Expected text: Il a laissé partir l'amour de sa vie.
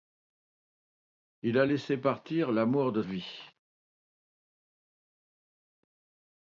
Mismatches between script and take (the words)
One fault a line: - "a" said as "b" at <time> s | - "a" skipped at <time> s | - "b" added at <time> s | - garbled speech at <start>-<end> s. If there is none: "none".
- "sa" skipped at 3.0 s